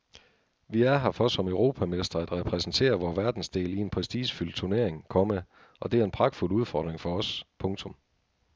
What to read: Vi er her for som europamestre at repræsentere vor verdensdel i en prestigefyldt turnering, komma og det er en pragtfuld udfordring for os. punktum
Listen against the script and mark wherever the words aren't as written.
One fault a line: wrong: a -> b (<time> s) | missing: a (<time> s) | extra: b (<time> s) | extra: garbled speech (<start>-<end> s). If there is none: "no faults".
no faults